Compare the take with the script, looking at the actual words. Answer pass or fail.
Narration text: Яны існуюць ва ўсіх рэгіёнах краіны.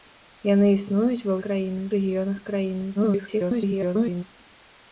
fail